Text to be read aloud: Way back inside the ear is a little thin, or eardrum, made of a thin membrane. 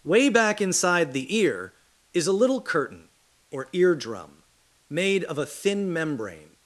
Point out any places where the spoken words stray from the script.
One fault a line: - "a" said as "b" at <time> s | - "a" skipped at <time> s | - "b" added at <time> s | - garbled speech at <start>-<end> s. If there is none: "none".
- "thin" said as "curtain" at 2.6 s